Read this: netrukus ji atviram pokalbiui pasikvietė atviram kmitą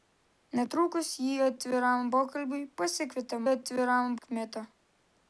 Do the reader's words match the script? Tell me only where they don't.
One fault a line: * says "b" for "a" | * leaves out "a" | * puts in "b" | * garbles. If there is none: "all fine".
all fine